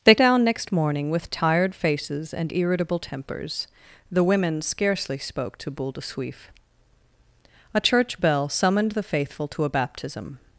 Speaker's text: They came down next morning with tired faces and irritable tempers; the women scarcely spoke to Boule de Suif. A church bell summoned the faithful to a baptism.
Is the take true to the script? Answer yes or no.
no